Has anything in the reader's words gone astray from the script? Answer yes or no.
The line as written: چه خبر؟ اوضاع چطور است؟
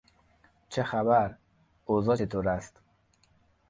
no